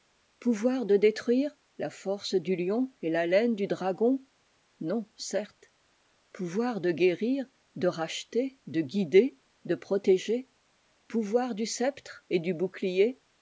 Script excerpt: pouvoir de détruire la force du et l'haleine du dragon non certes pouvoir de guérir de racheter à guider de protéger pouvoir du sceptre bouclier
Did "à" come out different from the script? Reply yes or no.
yes